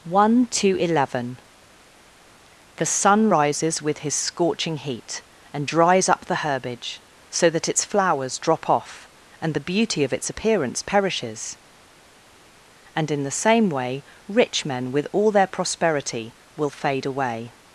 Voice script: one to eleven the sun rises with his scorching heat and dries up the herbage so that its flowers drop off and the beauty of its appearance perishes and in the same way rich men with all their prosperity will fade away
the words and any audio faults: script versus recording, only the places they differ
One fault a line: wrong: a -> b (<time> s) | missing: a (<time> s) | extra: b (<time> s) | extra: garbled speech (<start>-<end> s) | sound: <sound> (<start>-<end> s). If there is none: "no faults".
no faults